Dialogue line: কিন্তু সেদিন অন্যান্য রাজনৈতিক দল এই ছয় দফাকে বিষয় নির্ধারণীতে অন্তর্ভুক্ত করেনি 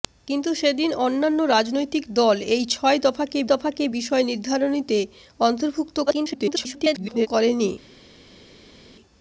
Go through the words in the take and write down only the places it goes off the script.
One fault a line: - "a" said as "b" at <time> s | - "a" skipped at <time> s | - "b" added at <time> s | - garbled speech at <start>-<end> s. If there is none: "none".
- "দফাকে" added at 3.5 s
- garbled speech at 6.1-7.3 s